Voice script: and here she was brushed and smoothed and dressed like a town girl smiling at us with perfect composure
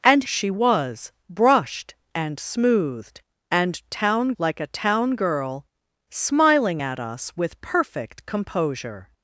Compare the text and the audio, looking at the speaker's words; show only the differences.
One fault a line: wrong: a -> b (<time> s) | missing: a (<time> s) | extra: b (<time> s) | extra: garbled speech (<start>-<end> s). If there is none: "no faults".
missing: here (0.2 s)
wrong: dressed -> town (3.9 s)